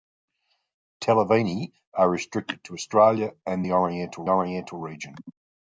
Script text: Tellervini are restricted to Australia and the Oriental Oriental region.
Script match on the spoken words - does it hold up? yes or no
yes